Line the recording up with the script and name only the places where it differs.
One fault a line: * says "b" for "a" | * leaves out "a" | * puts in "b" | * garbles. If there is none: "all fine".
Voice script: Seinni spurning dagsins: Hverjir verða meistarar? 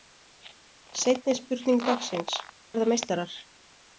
* leaves out "Hverjir"